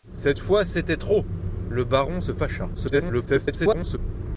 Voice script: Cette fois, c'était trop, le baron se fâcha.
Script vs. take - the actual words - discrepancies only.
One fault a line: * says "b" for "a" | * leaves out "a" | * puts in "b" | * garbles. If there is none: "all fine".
* garbles